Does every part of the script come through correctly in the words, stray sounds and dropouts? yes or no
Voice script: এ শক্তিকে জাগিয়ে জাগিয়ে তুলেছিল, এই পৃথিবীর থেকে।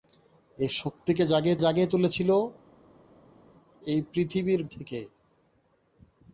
yes